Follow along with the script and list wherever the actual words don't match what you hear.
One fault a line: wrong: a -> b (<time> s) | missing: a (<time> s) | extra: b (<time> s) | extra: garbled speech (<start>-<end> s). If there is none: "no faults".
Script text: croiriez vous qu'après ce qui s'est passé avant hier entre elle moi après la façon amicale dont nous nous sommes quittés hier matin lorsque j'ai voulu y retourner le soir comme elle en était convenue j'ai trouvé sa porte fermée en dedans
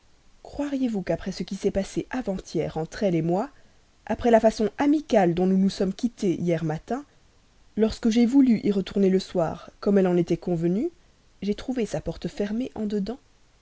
no faults